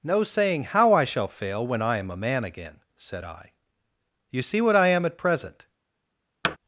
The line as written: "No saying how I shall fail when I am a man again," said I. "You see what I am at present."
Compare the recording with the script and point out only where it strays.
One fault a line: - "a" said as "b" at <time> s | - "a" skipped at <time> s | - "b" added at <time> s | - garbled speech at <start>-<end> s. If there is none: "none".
none